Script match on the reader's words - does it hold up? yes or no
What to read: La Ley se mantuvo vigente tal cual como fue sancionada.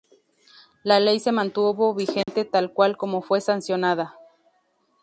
yes